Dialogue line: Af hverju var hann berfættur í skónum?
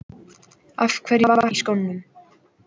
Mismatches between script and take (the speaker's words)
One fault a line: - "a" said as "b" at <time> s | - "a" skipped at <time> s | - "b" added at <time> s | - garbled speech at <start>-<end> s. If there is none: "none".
- "hann berfættur" skipped at 1.5 s